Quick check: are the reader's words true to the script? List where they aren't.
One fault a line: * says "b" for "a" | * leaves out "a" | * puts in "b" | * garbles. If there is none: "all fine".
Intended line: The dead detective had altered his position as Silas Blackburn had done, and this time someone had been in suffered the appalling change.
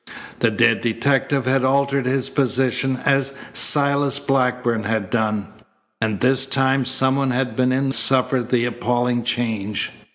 all fine